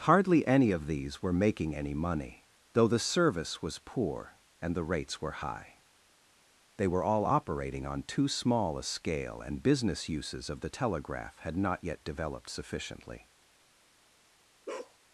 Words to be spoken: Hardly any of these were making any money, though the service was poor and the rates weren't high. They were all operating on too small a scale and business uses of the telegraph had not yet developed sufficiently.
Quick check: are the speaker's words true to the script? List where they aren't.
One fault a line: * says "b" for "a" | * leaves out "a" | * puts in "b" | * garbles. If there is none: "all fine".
* says "were" for "weren't"